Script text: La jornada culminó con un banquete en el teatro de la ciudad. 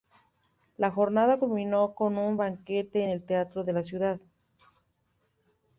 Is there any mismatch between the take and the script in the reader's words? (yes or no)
no